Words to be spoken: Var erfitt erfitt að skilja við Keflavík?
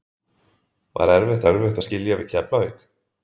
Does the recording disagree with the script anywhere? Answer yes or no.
no